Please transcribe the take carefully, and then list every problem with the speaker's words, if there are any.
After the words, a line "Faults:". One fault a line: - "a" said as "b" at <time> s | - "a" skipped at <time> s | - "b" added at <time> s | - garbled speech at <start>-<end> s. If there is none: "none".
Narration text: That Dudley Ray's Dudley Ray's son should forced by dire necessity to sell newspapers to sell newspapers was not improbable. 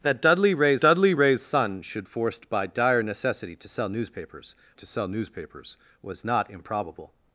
That Dudley Ray's Dudley Ray's son should forced by dire necessity to sell newspapers to sell newspapers was not improbable.
Faults:
none